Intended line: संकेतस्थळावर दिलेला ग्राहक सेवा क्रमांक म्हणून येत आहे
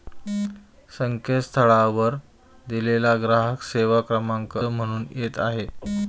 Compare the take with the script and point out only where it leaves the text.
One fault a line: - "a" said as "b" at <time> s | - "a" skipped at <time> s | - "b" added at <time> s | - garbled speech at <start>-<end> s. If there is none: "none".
none